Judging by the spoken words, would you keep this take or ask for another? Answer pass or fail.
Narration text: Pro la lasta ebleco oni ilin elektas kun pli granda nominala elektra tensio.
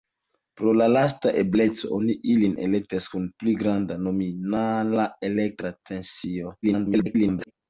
fail